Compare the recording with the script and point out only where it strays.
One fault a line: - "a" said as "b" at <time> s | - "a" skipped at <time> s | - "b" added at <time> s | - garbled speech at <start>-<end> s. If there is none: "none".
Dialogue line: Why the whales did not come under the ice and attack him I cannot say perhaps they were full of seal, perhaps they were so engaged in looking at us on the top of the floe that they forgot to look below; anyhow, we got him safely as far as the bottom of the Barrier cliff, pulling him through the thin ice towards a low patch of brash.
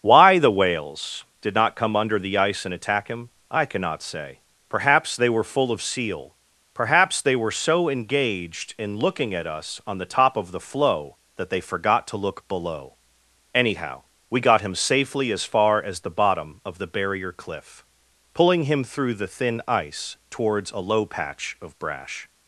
none